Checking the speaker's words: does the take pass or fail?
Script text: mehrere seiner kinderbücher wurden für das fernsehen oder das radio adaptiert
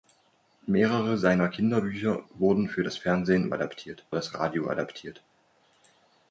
fail